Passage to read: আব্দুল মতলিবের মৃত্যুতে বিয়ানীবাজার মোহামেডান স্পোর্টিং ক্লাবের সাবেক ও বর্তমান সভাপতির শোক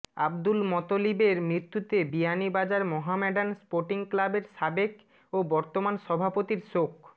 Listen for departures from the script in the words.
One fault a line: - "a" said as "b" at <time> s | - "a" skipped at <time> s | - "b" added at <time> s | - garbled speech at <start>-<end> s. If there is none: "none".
none